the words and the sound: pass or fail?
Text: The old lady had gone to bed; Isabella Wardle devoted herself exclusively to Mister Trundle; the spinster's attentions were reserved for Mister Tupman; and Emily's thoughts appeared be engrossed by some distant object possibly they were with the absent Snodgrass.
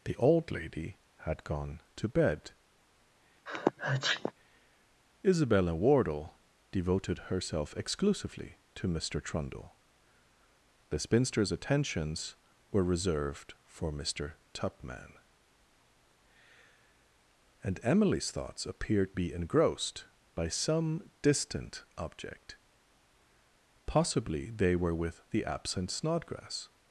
fail